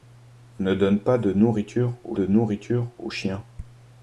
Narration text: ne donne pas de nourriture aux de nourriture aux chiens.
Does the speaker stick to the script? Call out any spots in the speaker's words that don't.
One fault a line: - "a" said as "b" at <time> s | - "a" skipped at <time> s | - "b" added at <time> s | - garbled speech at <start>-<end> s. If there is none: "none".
none